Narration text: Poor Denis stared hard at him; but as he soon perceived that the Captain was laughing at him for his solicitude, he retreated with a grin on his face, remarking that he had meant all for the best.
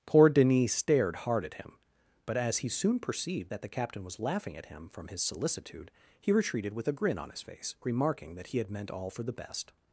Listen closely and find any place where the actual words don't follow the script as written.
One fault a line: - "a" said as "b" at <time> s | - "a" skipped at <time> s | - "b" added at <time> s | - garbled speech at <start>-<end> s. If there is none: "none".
- "for" said as "from" at 4.9 s